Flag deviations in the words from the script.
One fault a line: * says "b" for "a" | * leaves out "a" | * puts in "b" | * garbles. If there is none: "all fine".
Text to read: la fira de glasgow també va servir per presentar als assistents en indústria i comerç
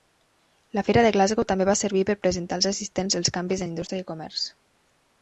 * puts in "els canvis"